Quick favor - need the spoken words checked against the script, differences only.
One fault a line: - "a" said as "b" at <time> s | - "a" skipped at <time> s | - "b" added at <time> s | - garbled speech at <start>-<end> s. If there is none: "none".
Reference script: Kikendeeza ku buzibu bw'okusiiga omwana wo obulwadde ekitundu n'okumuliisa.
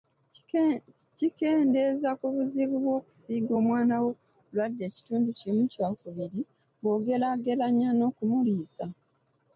- "kimu kyakubiri bw'ogeraageranya" added at 5.4 s